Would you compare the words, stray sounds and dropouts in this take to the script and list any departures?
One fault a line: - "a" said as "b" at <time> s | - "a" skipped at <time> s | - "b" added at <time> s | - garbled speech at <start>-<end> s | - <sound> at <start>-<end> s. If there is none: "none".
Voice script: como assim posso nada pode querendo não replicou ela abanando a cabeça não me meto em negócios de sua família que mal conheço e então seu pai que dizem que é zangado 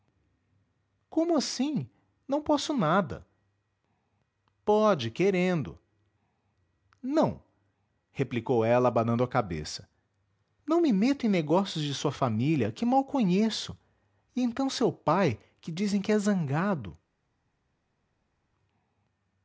- "não" added at 2.3 s